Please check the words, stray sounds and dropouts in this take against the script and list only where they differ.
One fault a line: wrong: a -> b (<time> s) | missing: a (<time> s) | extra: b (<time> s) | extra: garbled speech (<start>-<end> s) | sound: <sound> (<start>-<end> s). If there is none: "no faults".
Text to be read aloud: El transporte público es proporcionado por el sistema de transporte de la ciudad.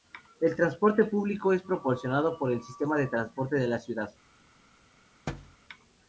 sound: thud (5.3-5.6 s)